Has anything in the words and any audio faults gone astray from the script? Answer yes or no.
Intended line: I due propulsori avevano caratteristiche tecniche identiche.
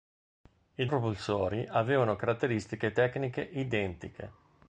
yes